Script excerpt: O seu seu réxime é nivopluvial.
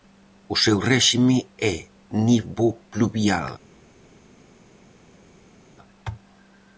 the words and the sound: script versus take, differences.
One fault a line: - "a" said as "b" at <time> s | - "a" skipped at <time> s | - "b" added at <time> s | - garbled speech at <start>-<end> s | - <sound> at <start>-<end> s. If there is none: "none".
- "seu" skipped at 0.8 s